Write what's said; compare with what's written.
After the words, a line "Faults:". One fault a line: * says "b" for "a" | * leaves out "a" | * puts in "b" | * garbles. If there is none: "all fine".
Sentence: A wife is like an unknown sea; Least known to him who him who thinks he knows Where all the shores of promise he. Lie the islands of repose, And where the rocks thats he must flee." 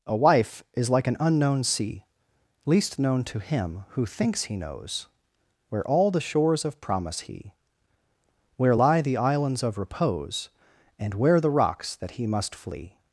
A wife is like an unknown sea; Least known to him who thinks he knows Where all the shores of promise he. Where lie the islands of repose, And where the rocks that he must flee."
Faults:
* leaves out "him who"
* puts in "Where"
* says "that" for "thats"